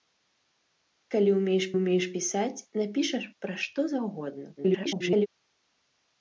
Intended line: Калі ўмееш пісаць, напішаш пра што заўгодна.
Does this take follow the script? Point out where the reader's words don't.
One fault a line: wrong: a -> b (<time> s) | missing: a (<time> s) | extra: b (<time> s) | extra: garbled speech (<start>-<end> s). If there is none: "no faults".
extra: ўмееш (1.7 s)
extra: garbled speech (4.6-5.3 s)